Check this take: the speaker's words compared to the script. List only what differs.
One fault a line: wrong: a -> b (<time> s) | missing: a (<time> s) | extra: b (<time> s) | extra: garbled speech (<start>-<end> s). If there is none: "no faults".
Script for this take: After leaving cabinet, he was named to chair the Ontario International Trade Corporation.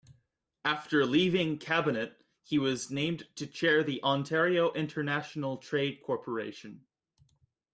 no faults